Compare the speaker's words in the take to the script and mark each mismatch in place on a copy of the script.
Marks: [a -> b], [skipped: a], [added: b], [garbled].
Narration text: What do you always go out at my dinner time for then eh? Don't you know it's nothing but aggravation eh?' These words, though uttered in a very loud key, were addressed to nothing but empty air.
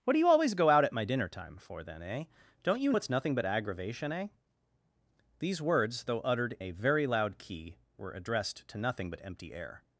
What do you always go out at my dinner time for then eh? Don't you [skipped: know] it's nothing but aggravation eh?' These words, though uttered [skipped: in] a very loud key, were addressed to nothing but empty air.